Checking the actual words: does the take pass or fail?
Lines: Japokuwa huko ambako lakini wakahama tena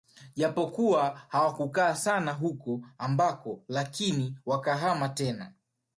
fail